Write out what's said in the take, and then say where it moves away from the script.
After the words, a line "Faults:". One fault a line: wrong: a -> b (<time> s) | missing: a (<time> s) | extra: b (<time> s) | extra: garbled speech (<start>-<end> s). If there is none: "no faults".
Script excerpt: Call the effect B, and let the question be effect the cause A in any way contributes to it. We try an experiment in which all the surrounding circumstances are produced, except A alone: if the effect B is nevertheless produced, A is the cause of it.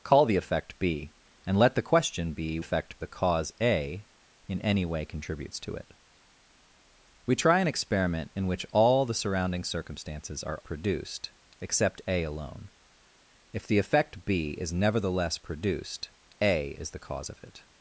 Call the effect B, and let the question be effect the cause A in any way contributes to it. We try an experiment in which all the surrounding circumstances are produced, except A alone: if the effect B is nevertheless produced, A is the cause of it.
Faults:
no faults